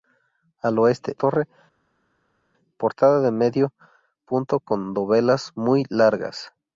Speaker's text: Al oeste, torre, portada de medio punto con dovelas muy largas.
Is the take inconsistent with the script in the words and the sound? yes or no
no